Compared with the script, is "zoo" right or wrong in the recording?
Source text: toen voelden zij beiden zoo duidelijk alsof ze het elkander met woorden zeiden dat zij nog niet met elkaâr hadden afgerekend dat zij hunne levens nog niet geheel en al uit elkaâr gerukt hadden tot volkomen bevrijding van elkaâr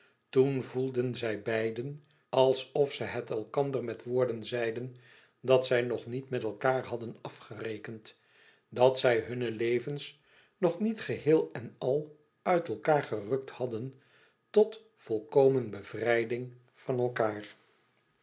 wrong